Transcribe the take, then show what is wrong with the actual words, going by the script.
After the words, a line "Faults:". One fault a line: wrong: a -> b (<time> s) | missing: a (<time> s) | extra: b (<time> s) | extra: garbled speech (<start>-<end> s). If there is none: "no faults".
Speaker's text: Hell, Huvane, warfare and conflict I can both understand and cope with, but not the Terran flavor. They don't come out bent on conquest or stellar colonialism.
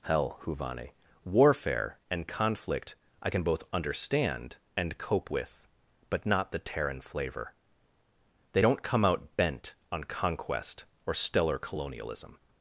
Hell, Huvane, warfare and conflict I can both understand and cope with, but not the Terran flavor. They don't come out bent on conquest or stellar colonialism.
Faults:
no faults